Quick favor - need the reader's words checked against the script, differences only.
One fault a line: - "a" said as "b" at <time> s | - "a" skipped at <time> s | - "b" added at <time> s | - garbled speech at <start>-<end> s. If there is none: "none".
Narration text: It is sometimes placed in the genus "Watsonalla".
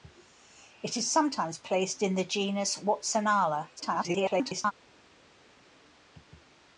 - garbled speech at 3.8-4.7 s